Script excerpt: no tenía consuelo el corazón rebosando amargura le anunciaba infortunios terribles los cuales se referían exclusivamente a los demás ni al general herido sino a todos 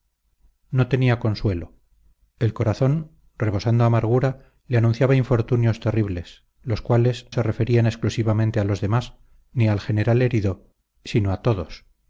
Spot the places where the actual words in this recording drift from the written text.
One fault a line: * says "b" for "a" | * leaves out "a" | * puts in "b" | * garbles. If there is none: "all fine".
all fine